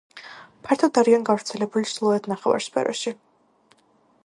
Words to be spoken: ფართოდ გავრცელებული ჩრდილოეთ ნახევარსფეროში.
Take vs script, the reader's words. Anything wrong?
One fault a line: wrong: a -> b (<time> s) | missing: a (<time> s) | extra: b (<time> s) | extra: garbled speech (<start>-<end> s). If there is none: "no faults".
extra: არიან (1.0 s)